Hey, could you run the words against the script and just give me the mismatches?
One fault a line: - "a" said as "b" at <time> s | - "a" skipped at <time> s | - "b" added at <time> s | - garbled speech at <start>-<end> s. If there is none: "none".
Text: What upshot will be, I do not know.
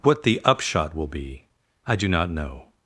- "the" added at 0.2 s